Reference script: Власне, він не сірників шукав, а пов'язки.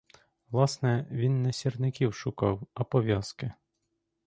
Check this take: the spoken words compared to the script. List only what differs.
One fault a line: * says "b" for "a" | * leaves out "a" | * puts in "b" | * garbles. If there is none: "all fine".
all fine